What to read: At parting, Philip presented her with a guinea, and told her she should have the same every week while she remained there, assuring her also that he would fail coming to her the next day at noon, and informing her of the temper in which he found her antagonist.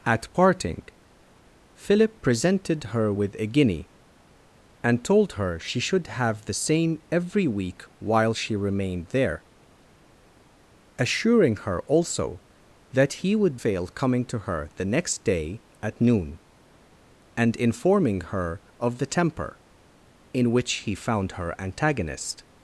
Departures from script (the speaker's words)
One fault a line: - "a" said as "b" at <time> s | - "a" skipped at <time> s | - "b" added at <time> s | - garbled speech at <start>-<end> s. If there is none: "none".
none